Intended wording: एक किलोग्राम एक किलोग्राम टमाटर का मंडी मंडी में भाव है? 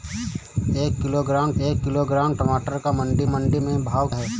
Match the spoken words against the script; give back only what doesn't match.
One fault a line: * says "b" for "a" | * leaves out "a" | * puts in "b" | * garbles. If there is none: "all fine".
all fine